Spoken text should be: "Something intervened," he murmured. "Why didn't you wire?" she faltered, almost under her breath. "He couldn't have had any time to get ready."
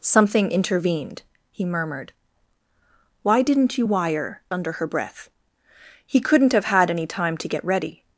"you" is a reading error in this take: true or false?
false